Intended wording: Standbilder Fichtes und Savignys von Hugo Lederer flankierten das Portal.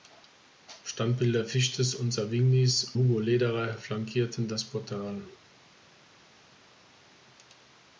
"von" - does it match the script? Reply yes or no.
no